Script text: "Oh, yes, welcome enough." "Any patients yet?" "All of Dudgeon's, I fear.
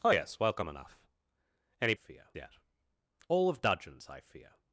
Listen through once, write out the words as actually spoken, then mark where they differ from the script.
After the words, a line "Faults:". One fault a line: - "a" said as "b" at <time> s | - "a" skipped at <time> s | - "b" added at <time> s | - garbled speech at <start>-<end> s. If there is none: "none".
"Oh, yes, welcome enough." "Any fear yet?" "All of Dudgeon's, I fear.
Faults:
- "patients" said as "fear" at 1.9 s